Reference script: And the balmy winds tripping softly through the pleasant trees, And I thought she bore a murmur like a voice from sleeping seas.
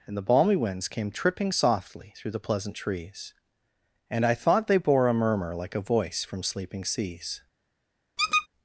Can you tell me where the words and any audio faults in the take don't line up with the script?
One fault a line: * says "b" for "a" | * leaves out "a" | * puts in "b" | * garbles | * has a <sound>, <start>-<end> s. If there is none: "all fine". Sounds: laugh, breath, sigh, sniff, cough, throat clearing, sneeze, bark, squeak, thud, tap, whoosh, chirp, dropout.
* puts in "came"
* says "they" for "she"
* has a squeak, 8.2-8.5 s